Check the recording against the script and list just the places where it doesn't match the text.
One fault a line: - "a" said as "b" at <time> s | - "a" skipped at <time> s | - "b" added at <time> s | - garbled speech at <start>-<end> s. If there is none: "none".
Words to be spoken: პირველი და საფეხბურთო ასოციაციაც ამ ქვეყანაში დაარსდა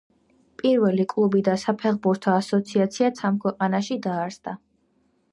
- "კლუბი" added at 1.1 s